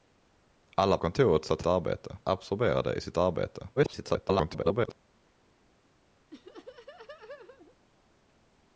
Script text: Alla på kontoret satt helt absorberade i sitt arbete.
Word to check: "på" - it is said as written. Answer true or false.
false